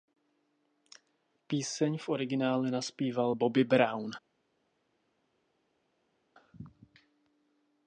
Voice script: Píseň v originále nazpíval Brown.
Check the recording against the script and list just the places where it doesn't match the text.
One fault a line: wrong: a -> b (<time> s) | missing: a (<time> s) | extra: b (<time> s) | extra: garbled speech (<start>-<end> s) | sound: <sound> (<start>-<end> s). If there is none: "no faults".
extra: Bobby (3.3 s)